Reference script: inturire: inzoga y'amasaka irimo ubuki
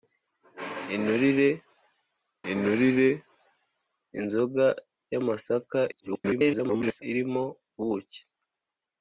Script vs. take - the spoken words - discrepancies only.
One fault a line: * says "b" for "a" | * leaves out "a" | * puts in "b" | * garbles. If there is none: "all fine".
* puts in "inturire"
* garbles